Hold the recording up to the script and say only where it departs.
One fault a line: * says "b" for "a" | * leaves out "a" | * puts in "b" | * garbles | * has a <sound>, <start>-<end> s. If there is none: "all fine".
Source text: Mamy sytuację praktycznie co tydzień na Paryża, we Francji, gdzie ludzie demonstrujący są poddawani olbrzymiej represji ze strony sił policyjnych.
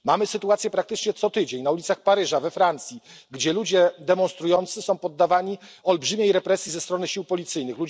* puts in "ulicach"